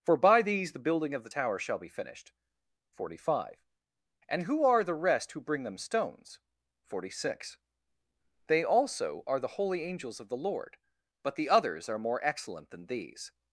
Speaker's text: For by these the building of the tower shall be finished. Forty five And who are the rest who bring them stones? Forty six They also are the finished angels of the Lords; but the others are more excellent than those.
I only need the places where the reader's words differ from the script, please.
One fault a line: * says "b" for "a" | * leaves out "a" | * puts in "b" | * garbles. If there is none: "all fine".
* says "holy" for "finished"
* says "Lord" for "Lords"
* says "these" for "those"